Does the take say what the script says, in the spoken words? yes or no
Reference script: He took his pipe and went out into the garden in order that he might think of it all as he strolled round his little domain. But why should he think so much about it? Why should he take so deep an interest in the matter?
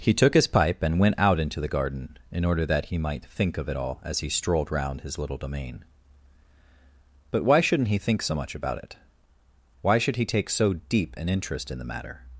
no